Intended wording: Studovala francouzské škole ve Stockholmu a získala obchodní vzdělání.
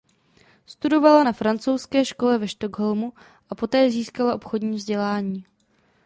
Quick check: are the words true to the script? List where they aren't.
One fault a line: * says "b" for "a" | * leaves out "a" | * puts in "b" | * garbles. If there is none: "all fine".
* puts in "na"
* puts in "poté"